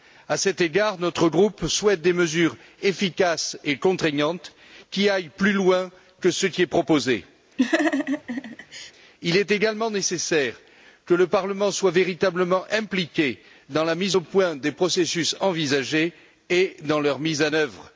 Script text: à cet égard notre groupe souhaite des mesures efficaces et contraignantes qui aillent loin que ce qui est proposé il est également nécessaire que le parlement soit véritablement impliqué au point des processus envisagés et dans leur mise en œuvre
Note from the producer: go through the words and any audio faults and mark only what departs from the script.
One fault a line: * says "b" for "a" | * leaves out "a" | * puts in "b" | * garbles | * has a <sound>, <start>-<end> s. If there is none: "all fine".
* puts in "plus"
* has a laugh, 7.6-8.9 s
* puts in "dans la mise"